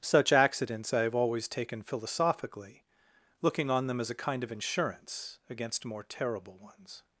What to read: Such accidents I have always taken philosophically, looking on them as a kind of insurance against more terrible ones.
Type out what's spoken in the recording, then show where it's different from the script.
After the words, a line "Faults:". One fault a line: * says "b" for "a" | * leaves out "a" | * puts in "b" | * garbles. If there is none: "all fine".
Such accidents I have always taken philosophically, looking on them as a kind of insurance against more terrible ones.
Faults:
all fine